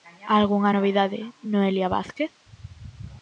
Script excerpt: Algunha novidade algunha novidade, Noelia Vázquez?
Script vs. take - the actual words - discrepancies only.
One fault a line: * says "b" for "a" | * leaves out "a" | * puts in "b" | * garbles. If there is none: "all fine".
* leaves out "algunha novidade"